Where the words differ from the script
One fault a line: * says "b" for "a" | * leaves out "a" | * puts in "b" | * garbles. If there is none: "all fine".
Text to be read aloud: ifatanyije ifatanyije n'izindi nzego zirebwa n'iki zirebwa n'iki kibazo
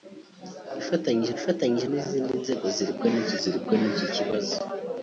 all fine